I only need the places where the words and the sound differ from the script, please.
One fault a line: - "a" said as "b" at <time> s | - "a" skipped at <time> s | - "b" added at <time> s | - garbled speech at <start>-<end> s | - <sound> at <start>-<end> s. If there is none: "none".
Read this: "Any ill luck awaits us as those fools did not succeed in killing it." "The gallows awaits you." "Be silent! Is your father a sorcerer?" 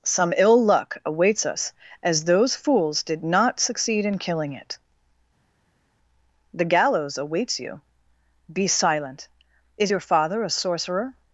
- "Any" said as "Some" at 0.0 s